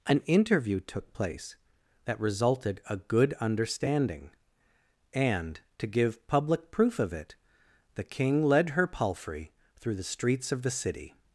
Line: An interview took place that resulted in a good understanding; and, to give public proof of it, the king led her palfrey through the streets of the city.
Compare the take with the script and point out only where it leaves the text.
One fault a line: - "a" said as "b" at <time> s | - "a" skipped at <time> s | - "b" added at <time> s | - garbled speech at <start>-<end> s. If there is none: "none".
- "in" skipped at 2.8 s